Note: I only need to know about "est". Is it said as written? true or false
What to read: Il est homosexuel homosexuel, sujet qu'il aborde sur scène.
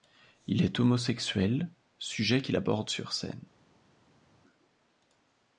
true